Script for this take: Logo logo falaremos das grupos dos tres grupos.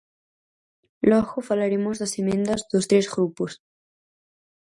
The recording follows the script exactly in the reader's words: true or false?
false